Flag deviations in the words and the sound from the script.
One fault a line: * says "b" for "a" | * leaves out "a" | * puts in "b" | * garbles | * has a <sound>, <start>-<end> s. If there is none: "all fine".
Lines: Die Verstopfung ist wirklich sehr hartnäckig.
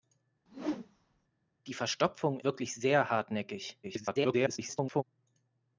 * has a whoosh, 0.5-1.3 s
* leaves out "ist"
* garbles